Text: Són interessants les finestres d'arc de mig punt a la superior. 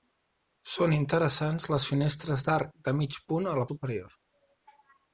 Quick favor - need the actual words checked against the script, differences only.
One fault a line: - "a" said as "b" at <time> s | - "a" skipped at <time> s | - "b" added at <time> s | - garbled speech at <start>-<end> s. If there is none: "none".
none